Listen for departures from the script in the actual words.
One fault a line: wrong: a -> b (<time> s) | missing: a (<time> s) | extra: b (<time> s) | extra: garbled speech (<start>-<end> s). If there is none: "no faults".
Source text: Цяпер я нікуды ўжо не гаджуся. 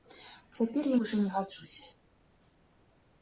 missing: нікуды (1.0 s)